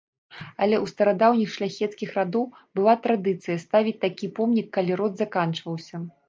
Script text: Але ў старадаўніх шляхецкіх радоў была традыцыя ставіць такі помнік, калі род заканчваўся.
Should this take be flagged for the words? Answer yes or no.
no